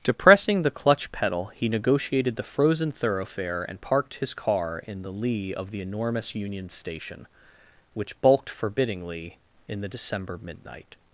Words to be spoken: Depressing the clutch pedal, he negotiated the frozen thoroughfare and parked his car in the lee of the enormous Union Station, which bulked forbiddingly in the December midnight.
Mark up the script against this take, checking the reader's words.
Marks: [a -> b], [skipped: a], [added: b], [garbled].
Depressing the clutch pedal, he negotiated the frozen thoroughfare and parked his car in the lee of the enormous Union Station, which bulked forbiddingly in the December midnight.